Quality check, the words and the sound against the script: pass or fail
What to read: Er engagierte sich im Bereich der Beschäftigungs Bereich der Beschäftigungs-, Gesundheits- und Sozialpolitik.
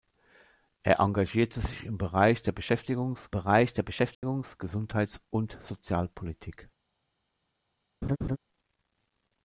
fail